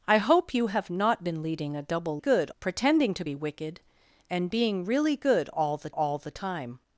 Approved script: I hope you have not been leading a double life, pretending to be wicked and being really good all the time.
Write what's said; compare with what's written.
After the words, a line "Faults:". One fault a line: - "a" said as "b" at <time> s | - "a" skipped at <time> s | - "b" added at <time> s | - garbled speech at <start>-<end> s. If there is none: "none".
I hope you have not been leading a double good, pretending to be wicked and being really good all the all the time.
Faults:
- "life" said as "good" at 2.2 s
- "all the" added at 5.9 s